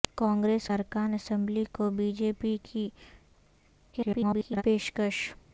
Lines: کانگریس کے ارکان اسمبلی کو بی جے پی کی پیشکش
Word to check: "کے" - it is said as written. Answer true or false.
false